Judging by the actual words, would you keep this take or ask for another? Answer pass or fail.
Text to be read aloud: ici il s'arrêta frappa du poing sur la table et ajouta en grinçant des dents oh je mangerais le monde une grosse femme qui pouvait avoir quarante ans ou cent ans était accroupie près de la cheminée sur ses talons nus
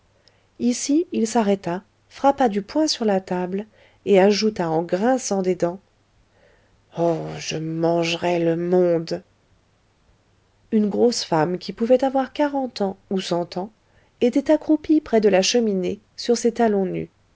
pass